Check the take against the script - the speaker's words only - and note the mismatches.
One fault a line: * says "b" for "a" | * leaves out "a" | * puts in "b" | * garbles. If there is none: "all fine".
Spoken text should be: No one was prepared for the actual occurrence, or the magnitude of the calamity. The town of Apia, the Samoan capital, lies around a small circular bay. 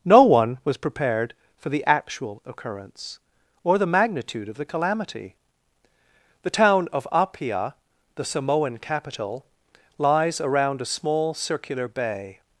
all fine